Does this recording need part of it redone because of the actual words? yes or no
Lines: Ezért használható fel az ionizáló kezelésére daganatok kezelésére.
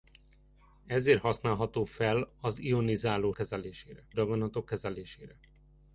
no